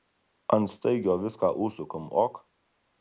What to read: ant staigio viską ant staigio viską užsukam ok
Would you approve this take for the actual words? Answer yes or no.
no